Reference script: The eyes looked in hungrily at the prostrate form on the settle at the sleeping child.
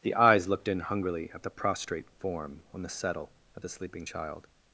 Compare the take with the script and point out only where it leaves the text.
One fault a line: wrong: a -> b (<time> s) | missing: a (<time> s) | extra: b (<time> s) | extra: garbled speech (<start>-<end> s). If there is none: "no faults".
no faults